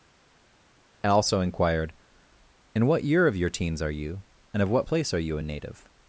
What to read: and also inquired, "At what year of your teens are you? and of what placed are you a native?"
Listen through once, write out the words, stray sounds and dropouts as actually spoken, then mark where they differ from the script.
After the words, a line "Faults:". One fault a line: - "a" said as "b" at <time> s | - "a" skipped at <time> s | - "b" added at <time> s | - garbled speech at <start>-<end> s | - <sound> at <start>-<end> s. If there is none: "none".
and also inquired, "In what year of your teens are you? and of what place are you a native?"
Faults:
- "At" said as "In" at 2.7 s
- "placed" said as "place" at 4.8 s